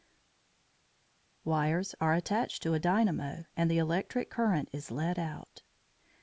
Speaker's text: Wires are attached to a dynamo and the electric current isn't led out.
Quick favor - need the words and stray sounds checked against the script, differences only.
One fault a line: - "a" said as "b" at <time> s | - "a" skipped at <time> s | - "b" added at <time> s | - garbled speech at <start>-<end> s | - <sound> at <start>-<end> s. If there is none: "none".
- "isn't" said as "is" at 4.7 s